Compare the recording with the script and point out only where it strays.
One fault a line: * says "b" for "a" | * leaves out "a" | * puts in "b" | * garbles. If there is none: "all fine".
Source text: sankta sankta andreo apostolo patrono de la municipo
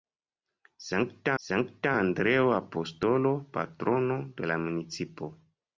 all fine